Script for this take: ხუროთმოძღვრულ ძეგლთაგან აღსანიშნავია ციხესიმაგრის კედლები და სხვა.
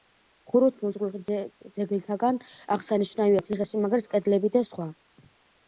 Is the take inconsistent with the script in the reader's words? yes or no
no